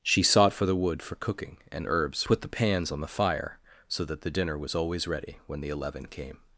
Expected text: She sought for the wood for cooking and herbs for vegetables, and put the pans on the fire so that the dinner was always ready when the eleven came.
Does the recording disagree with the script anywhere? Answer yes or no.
yes